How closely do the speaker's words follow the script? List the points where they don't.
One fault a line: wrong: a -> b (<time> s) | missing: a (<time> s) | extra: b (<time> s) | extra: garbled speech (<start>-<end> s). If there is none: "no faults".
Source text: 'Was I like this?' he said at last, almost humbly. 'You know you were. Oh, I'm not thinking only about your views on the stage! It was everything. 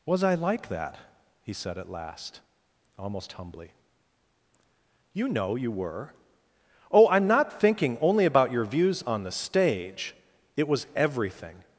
wrong: this -> that (0.7 s)